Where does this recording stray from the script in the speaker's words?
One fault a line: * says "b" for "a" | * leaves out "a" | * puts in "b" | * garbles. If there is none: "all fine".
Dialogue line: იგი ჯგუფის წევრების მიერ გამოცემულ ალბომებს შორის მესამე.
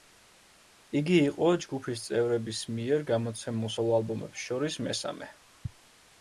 * puts in "იყო"
* puts in "სოლო"